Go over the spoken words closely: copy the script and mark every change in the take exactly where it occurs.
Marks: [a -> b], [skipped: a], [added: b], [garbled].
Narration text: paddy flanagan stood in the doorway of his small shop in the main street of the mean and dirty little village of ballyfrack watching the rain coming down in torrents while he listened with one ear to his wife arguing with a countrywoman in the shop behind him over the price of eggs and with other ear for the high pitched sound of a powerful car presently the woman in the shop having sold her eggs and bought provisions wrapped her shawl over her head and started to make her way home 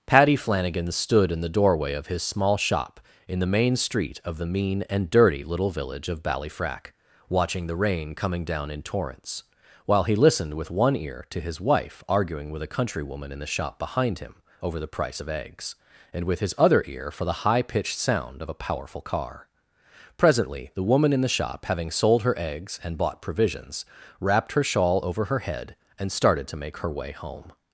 paddy flanagan stood in the doorway of his small shop in the main street of the mean and dirty little village of ballyfrack watching the rain coming down in torrents while he listened with one ear to his wife arguing with a countrywoman in the shop behind him over the price of eggs and with [added: his] other ear for the high pitched sound of a powerful car presently the woman in the shop having sold her eggs and bought provisions wrapped her shawl over her head and started to make her way home